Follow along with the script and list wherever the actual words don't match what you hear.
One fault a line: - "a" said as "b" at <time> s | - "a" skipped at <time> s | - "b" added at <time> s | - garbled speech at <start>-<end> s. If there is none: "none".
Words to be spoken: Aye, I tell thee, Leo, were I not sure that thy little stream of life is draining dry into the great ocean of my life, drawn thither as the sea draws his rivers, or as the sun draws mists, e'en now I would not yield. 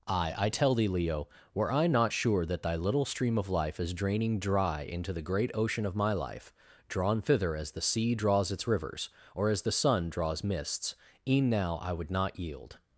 - "his" said as "its" at 8.5 s